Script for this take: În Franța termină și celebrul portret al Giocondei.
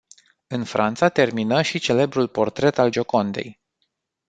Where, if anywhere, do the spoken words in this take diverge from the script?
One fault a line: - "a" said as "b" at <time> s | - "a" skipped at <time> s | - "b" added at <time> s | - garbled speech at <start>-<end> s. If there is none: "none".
none